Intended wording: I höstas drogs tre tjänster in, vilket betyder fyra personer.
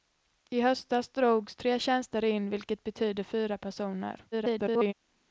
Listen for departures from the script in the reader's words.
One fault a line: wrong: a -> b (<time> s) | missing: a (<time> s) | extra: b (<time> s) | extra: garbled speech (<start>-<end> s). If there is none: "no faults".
extra: garbled speech (4.3-4.9 s)